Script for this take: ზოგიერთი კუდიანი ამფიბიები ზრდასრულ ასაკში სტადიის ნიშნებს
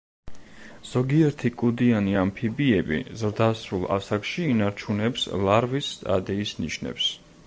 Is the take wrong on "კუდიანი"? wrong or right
right